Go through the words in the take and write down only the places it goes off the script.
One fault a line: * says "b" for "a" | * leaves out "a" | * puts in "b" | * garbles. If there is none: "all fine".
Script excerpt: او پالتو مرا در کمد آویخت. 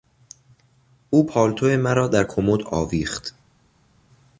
all fine